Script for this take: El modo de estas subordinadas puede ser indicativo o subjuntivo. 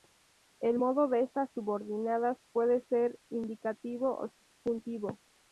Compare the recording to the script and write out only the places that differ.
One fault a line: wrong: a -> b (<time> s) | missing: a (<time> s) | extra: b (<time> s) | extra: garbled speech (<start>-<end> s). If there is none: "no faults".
no faults